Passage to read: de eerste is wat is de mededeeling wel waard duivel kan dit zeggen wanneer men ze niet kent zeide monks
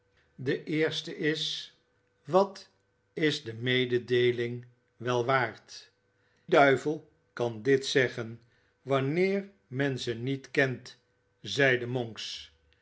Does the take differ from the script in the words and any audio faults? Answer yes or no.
no